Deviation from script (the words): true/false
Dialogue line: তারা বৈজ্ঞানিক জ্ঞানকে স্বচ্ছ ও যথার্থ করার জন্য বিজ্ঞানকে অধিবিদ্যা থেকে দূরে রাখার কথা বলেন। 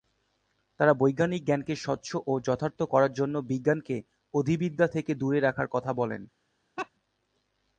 false